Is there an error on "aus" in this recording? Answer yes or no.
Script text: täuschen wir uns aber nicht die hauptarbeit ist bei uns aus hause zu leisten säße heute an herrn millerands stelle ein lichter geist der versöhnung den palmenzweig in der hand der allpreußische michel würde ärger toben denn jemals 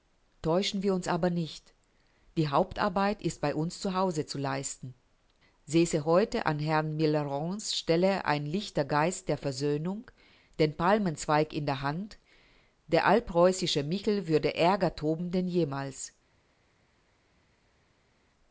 yes